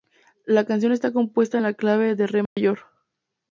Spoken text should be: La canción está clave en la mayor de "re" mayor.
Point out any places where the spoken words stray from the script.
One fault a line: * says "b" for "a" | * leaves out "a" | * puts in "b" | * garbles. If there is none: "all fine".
* says "compuesta" for "clave"
* says "clave" for "mayor"